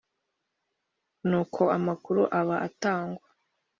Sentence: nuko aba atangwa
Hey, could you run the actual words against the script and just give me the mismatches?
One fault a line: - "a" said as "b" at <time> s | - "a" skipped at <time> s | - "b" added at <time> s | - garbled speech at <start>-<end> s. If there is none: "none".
- "amakuru" added at 1.8 s